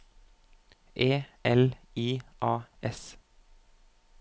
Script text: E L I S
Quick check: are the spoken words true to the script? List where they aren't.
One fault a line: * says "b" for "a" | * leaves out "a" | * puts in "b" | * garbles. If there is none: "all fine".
* puts in "A"